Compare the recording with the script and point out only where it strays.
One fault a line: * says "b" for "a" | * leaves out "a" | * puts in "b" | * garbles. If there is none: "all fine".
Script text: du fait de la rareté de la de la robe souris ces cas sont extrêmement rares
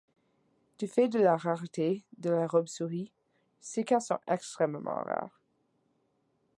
* leaves out "de la"